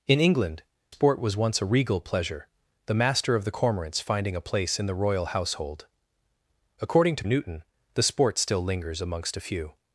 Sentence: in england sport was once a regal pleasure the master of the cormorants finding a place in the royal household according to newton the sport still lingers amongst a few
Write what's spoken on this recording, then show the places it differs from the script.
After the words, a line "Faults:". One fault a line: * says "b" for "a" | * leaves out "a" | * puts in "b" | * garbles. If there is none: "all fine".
in england sport was once a regal pleasure the master of the cormorants finding a place in the royal household according to newton the sport still lingers amongst a few
Faults:
all fine